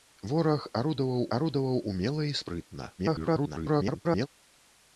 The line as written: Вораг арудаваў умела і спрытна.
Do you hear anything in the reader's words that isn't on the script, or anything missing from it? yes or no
yes